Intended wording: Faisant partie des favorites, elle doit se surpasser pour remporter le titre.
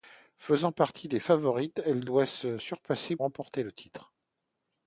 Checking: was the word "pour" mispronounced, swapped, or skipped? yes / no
yes